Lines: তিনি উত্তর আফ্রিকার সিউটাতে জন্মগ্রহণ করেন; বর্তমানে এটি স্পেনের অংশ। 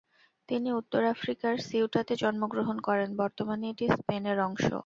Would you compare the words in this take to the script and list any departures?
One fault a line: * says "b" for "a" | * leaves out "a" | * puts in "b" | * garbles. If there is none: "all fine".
all fine